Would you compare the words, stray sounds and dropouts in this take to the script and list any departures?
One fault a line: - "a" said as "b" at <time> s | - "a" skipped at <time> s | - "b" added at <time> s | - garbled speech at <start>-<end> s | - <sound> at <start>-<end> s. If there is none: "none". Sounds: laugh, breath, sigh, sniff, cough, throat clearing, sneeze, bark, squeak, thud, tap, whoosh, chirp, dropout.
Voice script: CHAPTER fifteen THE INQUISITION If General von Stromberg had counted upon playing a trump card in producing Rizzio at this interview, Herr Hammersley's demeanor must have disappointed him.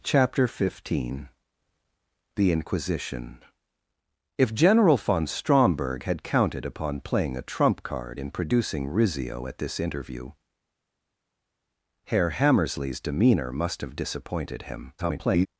- garbled speech at 15.0-15.5 s